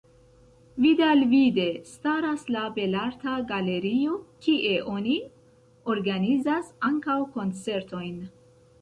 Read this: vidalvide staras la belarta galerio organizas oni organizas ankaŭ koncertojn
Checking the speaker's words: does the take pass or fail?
fail